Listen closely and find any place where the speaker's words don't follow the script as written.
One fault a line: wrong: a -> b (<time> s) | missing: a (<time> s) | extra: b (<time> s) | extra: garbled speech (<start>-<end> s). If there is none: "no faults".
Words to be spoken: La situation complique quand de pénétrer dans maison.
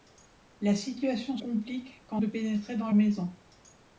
no faults